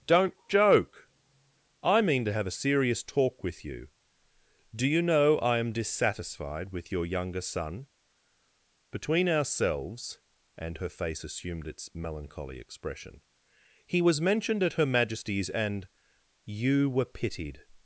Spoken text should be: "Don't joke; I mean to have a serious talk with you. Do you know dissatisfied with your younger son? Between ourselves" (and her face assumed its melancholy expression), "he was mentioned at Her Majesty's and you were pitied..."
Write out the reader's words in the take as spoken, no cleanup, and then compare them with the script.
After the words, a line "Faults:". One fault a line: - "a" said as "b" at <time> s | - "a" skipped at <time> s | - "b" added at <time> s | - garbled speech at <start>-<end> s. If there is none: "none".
"Don't joke; I mean to have a serious talk with you. Do you know I am dissatisfied with your younger son? Between ourselves" (and her face assumed its melancholy expression), "he was mentioned at Her Majesty's and you were pitied..."
Faults:
- "I am" added at 5.4 s